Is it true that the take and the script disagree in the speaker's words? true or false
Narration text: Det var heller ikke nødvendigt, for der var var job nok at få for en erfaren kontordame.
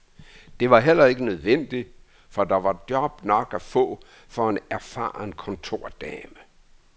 true